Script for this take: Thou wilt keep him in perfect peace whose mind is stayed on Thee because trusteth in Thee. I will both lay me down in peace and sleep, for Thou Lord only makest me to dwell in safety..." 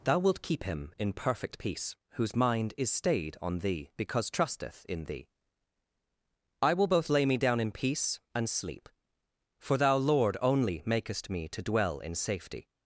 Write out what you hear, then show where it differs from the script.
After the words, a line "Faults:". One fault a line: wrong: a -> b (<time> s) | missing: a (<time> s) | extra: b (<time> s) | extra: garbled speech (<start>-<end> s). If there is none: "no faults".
Thou wilt keep him in perfect peace whose mind is stayed on Thee because trusteth in Thee. I will both lay me down in peace and sleep, for Thou Lord only makest me to dwell in safety..."
Faults:
no faults